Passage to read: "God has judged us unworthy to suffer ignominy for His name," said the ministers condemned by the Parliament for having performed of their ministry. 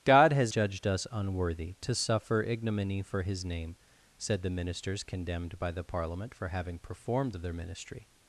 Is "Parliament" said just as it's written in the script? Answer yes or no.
yes